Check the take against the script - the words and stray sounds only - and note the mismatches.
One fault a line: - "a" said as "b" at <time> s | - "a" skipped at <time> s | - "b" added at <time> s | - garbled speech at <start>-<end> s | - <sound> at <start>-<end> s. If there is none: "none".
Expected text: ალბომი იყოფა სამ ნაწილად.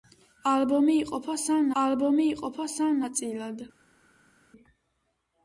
- "ალბომი იყოფა სამ" added at 1.8 s